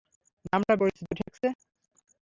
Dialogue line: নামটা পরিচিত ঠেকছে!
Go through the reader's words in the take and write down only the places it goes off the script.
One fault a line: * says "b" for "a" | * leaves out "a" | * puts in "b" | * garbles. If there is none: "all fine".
all fine